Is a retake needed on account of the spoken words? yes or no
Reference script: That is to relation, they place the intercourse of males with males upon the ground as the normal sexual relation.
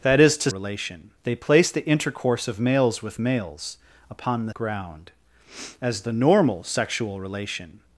no